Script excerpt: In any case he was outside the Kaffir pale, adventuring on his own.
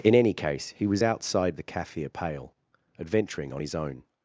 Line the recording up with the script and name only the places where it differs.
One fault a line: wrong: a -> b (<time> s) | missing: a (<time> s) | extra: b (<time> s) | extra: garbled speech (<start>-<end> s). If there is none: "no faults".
no faults